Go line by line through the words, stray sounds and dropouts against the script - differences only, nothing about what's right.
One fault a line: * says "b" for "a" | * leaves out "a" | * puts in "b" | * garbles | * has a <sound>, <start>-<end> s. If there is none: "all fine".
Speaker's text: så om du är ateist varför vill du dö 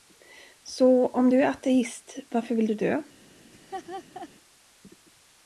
* has a laugh, 3.5-4.3 s